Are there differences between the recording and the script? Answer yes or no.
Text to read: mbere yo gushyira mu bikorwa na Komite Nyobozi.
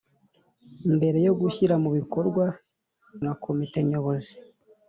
no